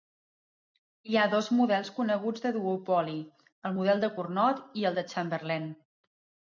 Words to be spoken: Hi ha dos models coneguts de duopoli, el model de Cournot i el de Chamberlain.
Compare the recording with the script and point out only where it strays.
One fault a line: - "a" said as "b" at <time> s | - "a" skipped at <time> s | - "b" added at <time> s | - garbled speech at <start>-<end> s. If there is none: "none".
none